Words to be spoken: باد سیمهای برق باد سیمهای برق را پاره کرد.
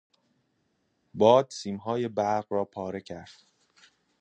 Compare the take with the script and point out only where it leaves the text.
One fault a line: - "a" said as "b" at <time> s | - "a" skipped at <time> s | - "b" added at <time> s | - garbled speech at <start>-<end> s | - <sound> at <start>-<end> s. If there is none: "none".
- "باد سیمهای برق" skipped at 2.5 s